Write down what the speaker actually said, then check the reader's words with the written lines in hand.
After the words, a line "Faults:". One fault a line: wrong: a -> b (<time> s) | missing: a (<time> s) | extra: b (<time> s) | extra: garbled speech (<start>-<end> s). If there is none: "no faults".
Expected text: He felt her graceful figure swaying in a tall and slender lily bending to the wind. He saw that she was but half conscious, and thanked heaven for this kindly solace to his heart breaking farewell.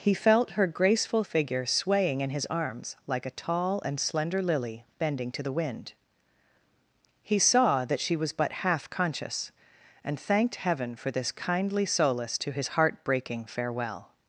He felt her graceful figure swaying in his arms like a tall and slender lily bending to the wind. He saw that she was but half conscious, and thanked heaven for this kindly solace to his heart breaking farewell.
Faults:
extra: his arms like (2.3 s)